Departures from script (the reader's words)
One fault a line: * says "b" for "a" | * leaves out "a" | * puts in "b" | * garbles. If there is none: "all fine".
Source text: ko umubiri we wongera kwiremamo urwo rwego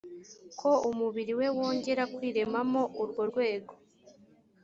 all fine